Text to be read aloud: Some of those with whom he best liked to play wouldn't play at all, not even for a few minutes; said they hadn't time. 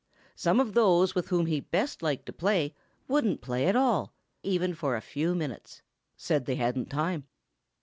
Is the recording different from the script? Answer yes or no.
yes